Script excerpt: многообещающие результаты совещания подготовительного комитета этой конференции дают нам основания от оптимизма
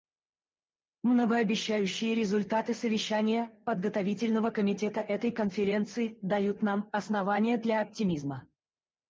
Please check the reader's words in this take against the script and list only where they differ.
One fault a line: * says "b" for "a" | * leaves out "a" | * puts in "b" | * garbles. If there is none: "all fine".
* says "для" for "от"